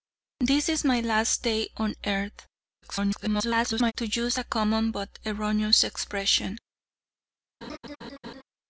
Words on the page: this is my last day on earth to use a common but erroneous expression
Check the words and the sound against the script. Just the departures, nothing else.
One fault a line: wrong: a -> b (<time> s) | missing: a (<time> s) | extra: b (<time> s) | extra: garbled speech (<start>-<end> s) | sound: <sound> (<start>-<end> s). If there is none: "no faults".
extra: garbled speech (2.8-3.9 s)
sound: laugh (7.6-8.4 s)